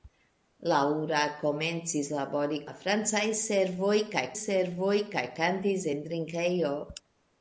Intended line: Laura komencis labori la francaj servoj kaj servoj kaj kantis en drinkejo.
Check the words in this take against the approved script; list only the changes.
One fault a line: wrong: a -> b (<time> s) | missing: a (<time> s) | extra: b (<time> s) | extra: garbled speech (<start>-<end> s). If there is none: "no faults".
no faults